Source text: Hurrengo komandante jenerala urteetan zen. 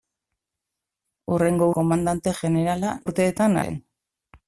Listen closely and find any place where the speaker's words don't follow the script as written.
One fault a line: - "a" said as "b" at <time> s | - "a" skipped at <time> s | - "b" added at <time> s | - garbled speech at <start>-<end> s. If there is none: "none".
none